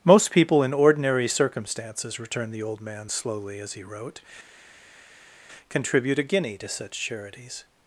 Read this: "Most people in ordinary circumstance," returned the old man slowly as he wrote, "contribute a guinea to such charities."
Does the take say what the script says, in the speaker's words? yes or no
no